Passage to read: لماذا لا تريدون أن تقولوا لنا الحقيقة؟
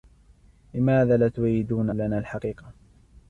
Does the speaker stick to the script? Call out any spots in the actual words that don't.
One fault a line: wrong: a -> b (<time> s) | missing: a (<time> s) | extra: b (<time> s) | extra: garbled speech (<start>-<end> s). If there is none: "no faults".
missing: أن تقولوا (1.9 s)